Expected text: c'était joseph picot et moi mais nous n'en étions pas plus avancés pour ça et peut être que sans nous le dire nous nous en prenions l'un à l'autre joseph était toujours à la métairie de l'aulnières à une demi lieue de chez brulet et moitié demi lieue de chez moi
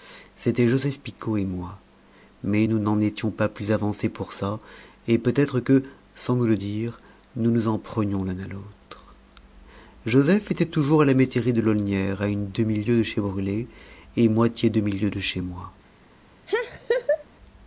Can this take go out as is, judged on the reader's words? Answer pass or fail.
pass